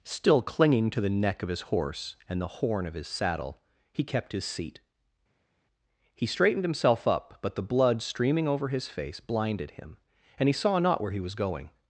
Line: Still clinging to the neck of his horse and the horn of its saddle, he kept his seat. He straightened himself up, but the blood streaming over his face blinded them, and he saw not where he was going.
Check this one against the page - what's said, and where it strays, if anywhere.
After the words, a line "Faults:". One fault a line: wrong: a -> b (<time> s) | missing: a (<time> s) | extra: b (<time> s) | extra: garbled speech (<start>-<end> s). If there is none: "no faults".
Still clinging to the neck of his horse and the horn of his saddle, he kept his seat. He straightened himself up, but the blood streaming over his face blinded him, and he saw not where he was going.
Faults:
wrong: its -> his (2.9 s)
wrong: them -> him (9.7 s)